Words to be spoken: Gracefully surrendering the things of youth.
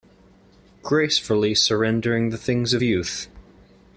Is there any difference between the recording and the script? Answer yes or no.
no